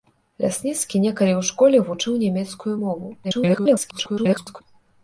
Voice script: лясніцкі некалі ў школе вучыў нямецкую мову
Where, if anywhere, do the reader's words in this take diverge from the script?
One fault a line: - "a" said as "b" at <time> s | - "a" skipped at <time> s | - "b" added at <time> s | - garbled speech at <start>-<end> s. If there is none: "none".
- garbled speech at 3.2-4.6 s